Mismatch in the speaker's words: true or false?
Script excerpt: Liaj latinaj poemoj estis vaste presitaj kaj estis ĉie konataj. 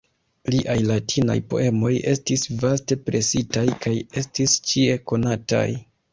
false